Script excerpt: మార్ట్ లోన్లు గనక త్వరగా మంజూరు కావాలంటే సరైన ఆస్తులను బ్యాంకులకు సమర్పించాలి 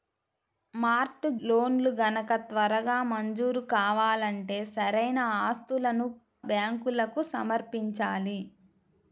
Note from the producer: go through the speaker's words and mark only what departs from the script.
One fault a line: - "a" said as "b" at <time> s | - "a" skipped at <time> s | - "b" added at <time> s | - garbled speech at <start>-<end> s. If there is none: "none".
none